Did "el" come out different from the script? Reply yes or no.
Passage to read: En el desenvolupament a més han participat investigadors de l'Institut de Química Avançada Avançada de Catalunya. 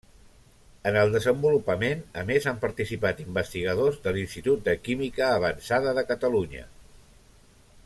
no